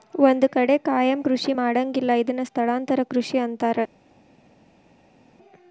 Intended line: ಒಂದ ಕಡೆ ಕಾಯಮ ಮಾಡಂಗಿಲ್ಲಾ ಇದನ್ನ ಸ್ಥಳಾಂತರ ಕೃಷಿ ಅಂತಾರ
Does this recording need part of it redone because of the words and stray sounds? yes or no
yes